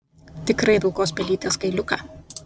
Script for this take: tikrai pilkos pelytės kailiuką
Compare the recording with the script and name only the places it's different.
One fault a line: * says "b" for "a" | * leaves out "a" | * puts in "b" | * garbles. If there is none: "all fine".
all fine